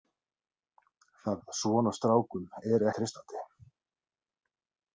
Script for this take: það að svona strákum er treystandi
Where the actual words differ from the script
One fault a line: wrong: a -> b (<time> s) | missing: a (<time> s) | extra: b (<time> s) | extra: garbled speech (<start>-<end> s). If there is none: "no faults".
no faults